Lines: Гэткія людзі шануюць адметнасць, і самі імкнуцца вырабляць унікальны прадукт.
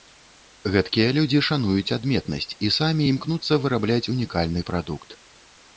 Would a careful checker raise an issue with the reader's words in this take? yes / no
no